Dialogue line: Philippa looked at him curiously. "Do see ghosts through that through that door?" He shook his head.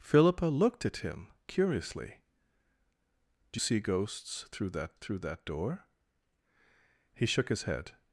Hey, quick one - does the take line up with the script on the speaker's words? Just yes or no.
yes